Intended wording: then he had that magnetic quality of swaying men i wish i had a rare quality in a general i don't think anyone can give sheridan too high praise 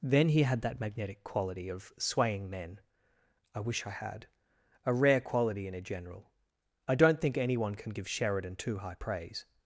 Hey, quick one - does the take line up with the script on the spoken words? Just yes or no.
yes